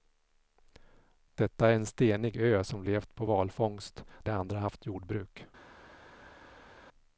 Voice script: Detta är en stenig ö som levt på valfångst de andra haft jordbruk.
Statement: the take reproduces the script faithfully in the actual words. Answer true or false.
true